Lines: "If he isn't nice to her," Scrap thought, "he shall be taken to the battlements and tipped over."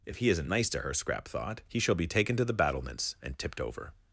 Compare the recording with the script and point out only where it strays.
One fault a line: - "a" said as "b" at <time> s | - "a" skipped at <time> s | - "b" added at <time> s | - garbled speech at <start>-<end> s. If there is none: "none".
none